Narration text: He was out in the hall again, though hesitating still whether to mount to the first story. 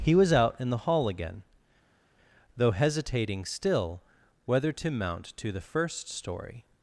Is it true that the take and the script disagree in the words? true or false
false